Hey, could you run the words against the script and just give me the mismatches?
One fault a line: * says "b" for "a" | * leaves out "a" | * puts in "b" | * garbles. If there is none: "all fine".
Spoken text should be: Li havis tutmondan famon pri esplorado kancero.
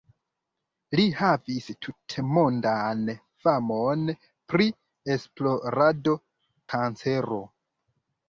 all fine